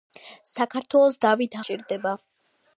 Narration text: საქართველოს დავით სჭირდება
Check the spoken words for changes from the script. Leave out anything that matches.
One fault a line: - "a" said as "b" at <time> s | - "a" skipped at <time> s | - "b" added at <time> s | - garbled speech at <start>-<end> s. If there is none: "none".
none